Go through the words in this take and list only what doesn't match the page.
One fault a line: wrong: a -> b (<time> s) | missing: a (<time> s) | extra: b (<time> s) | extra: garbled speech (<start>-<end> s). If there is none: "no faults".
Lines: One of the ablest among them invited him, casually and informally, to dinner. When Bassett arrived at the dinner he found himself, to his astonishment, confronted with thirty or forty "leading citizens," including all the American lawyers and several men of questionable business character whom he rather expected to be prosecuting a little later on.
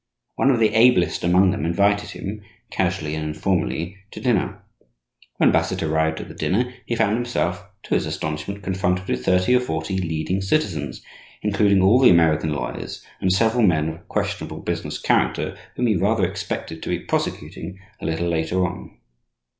no faults